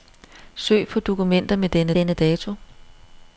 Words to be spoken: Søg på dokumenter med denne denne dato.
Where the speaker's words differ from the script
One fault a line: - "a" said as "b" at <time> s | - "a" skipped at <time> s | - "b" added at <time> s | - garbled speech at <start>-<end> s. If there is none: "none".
none